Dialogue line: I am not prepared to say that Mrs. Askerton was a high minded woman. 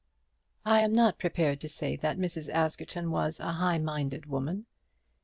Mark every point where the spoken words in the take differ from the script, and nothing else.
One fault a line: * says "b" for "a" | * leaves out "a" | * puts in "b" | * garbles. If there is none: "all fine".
all fine